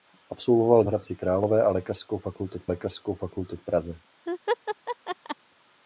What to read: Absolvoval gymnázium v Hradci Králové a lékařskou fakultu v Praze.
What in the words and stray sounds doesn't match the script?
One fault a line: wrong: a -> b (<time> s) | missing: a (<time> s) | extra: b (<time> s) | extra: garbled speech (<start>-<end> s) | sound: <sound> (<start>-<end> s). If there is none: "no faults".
missing: gymnázium (0.8 s)
extra: lékařskou fakultu v (2.7 s)
sound: laugh (4.3-5.4 s)